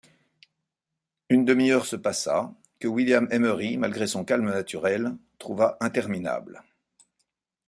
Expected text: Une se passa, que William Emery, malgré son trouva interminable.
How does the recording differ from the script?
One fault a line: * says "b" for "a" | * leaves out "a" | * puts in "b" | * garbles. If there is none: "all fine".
* puts in "demi heure"
* puts in "calme naturel"